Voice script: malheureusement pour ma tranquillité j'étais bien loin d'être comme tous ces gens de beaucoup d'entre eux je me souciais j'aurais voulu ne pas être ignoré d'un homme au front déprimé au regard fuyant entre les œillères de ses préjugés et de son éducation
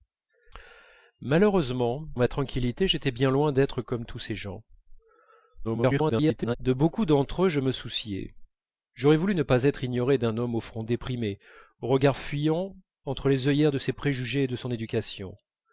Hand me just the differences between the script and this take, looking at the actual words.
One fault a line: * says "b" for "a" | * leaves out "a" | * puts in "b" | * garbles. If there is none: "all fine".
* leaves out "pour"
* garbles